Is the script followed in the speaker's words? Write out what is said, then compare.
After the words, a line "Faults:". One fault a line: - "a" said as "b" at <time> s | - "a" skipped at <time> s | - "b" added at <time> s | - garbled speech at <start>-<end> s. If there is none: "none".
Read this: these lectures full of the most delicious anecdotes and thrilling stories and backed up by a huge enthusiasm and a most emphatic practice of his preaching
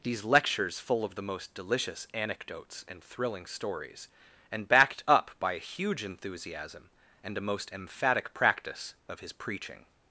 these lectures full of the most delicious anecdotes and thrilling stories and backed up by a huge enthusiasm and a most emphatic practice of his preaching
Faults:
none